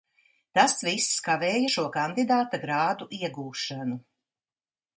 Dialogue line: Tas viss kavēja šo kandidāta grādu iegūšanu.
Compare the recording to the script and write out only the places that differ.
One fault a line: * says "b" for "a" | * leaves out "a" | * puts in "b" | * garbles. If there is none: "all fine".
all fine